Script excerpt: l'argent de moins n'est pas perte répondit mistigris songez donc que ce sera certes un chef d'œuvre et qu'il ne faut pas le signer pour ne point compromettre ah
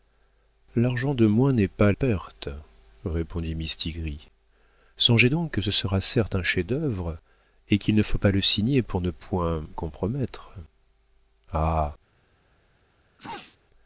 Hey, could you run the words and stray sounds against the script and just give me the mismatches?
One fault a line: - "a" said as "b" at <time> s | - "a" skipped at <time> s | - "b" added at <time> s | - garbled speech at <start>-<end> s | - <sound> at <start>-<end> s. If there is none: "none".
- sneeze at 13.2-13.6 s